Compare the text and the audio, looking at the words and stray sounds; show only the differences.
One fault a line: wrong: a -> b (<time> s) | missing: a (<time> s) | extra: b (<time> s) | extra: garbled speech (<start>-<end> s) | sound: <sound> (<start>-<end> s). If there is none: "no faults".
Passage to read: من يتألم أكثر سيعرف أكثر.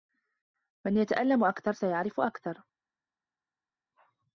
no faults